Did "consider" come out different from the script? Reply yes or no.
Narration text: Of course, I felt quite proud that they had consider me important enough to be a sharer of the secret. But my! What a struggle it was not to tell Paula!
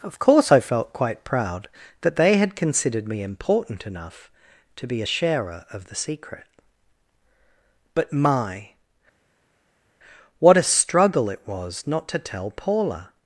yes